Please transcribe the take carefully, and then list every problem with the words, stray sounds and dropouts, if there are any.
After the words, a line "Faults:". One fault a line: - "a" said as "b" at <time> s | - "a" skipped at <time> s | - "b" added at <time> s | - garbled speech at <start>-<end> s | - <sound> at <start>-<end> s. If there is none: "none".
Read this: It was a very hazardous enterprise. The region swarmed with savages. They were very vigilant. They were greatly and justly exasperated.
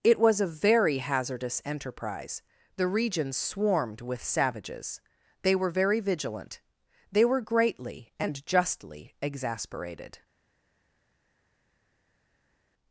It was a very hazardous enterprise. The region swarmed with savages. They were very vigilant. They were greatly and justly exasperated.
Faults:
none